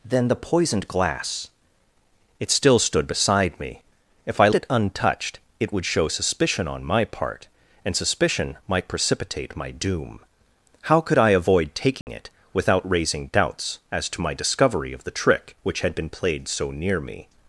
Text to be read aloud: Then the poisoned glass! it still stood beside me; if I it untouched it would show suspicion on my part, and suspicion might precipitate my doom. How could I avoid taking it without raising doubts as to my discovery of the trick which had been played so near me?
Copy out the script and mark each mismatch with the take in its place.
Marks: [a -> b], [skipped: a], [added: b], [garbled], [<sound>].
Then the poisoned glass! it still stood beside me; if I it untouched it would show suspicion on my part, and suspicion might precipitate my doom. How could I avoid taking [dropout] it without raising doubts as to my discovery of the trick which had been played so near me?